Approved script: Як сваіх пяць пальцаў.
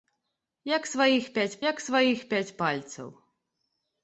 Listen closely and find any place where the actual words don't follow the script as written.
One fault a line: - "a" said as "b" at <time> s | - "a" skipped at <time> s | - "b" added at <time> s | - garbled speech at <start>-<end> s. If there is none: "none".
- "як сваіх пяць" added at 1.7 s